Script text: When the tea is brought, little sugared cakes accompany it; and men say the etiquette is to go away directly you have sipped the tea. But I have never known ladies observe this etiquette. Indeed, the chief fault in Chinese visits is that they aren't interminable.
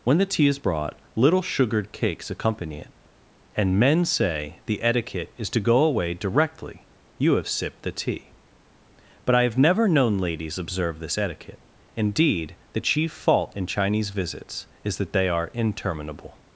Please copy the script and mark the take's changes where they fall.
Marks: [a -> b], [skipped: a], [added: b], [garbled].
When the tea is brought, little sugared cakes accompany it; and men say the etiquette is to go away directly you have sipped the tea. But I have never known ladies observe this etiquette. Indeed, the chief fault in Chinese visits is that they [aren't -> are] interminable.